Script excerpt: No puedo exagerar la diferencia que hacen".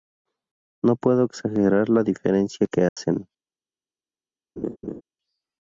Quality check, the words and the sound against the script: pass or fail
fail